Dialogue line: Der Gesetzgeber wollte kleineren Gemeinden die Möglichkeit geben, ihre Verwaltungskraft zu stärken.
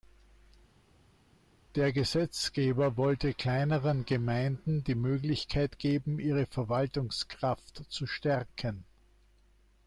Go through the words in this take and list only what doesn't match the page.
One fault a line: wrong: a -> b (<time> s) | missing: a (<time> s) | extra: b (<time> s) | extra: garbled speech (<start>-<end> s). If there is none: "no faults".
no faults